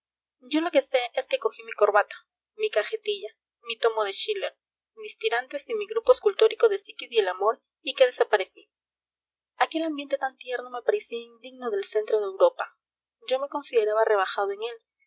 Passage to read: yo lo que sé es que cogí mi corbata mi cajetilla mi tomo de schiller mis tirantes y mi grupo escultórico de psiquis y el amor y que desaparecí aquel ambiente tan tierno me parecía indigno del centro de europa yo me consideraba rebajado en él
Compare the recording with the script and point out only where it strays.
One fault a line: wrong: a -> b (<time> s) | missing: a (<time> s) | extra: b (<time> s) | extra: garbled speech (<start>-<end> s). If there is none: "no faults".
no faults